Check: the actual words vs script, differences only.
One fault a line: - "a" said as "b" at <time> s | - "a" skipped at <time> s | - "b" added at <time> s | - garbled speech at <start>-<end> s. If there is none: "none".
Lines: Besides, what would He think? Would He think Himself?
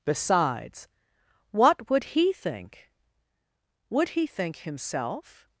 none